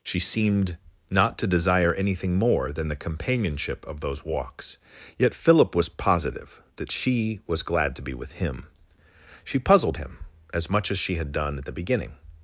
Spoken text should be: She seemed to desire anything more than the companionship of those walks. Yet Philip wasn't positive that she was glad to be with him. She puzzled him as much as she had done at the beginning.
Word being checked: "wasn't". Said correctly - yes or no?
no